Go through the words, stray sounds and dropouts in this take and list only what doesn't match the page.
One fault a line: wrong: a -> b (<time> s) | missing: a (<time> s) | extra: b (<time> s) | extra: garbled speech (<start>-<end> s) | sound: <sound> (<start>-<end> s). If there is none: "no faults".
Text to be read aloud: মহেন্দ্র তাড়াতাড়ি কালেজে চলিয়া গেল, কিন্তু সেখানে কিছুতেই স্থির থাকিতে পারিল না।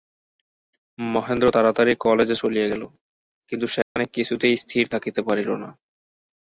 sound: dropout (3.8-4.0 s)